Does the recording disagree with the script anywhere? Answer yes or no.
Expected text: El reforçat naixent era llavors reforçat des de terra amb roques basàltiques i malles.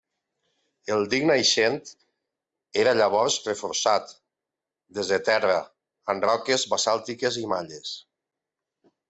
yes